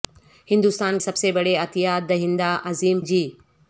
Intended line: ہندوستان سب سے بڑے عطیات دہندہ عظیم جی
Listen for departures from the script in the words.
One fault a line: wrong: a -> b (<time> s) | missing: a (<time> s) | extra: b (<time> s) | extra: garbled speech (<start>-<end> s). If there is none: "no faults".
no faults